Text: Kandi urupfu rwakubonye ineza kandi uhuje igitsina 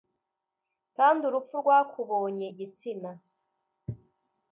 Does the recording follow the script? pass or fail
fail